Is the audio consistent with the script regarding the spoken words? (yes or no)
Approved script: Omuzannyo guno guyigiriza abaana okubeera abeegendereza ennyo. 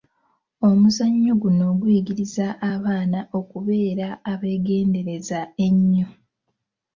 yes